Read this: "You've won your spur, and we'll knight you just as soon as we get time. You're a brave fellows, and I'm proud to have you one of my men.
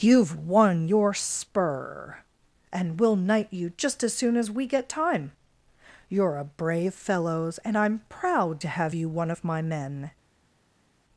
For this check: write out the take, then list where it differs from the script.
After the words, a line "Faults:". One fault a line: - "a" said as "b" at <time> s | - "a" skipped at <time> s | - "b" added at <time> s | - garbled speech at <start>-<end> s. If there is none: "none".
"You've won your spur, and we'll knight you just as soon as we get time. You're a brave fellows, and I'm proud to have you one of my men.
Faults:
none